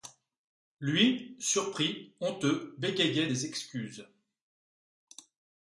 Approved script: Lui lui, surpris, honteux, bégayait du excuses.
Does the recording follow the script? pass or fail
fail